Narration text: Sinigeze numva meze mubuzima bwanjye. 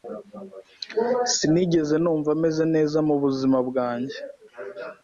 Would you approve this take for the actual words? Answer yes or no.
no